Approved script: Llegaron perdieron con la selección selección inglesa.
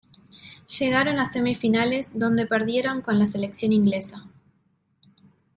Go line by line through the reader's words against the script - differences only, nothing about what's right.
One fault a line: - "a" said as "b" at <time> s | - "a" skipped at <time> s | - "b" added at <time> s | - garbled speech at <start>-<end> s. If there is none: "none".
- "a semifinales donde" added at 1.2 s
- "selección" skipped at 3.7 s